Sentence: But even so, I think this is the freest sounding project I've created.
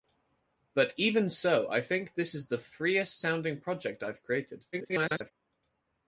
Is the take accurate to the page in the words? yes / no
no